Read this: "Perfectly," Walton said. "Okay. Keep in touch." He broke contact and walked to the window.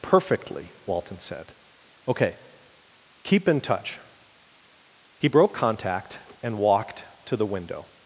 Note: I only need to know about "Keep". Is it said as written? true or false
true